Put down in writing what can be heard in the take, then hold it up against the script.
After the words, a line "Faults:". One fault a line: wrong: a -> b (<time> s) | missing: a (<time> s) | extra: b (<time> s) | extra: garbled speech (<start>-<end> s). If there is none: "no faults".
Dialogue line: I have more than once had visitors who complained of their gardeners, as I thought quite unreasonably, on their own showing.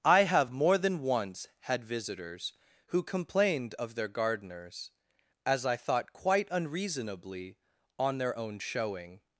I have more than once had visitors who complained of their gardeners, as I thought quite unreasonably, on their own showing.
Faults:
no faults